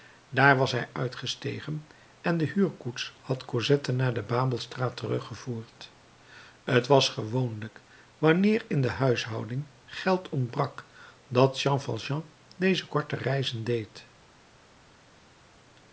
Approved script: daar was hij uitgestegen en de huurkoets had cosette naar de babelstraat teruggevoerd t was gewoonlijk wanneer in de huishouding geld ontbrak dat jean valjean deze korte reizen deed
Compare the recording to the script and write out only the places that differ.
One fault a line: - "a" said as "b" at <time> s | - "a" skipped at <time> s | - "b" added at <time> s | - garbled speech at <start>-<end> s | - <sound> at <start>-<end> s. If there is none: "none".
none